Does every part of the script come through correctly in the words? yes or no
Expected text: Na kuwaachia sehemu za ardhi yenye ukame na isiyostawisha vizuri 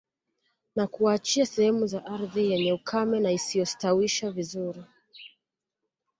yes